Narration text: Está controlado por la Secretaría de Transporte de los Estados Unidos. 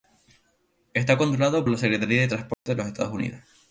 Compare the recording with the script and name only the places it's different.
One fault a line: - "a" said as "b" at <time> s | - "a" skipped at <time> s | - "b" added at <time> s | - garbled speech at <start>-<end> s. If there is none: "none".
- "por" skipped at 1.7 s